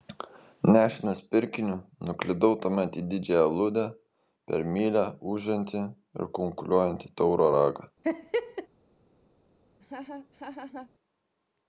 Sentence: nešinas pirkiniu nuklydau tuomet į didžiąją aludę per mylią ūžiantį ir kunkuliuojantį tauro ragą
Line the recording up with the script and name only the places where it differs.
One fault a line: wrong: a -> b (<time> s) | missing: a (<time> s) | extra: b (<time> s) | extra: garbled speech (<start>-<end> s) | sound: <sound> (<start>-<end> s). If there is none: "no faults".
sound: laugh (8.0-8.7 s)
sound: laugh (9.8-10.9 s)